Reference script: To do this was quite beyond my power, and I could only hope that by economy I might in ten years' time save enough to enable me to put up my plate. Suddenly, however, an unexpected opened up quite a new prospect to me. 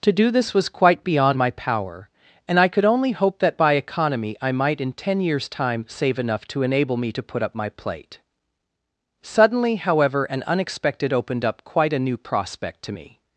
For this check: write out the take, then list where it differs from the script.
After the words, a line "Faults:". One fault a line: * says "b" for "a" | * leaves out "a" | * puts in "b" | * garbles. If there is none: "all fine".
To do this was quite beyond my power, and I could only hope that by economy I might in ten years' time save enough to enable me to put up my plate. Suddenly, however, an unexpected opened up quite a new prospect to me.
Faults:
all fine